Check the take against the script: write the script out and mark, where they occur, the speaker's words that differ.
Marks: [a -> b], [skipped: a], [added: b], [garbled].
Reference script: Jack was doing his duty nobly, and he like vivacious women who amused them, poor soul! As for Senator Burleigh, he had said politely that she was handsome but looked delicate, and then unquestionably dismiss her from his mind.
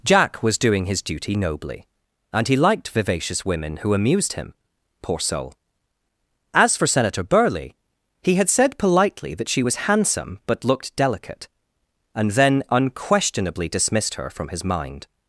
Jack was doing his duty nobly, and he [like -> liked] vivacious women who amused [them, -> him] poor soul! As for Senator Burleigh, he had said politely that she was handsome but looked delicate, and then unquestionably [dismiss -> dismissed] her from his mind.